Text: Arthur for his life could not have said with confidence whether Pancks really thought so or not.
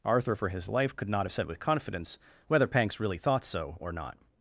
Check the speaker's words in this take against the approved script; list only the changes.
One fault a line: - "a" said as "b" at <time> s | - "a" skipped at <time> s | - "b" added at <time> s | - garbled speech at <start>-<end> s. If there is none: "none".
none